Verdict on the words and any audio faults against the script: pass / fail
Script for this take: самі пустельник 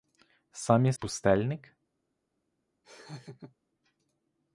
fail